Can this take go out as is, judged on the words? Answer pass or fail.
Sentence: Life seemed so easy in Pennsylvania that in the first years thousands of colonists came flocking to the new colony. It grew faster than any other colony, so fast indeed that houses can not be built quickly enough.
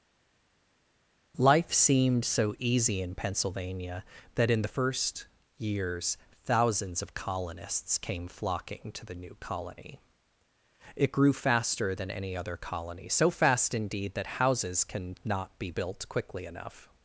pass